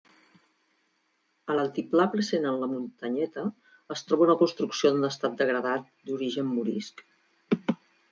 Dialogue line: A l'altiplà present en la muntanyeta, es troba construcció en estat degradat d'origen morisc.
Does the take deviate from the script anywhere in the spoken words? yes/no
yes